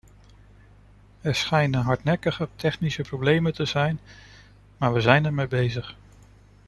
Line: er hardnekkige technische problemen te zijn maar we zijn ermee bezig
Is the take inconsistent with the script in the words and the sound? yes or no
yes